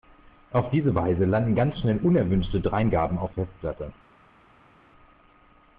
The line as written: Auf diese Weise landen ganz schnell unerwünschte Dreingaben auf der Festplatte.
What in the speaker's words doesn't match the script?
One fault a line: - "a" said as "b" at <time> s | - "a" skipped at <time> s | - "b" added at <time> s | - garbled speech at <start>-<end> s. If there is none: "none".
- "der" skipped at 3.3 s